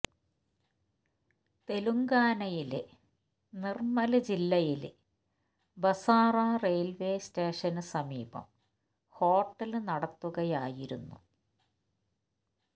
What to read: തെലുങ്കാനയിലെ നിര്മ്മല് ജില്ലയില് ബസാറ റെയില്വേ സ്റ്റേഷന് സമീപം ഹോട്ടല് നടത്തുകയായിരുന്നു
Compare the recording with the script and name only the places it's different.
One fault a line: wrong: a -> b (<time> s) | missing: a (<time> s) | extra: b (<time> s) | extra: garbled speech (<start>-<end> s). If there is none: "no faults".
no faults